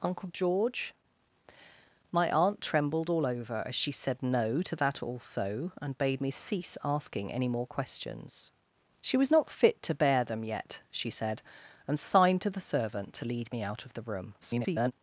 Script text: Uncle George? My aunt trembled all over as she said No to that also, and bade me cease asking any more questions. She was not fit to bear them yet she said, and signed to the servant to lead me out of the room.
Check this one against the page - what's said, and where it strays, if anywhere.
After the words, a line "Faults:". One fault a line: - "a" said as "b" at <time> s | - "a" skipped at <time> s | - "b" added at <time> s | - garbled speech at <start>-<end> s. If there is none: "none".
Uncle George? My aunt trembled all over as she said No to that also, and bade me cease asking any more questions. She was not fit to bear them yet she said, and signed to the servant to lead me out of the room. [garbled]
Faults:
- garbled speech at 14.4-14.9 s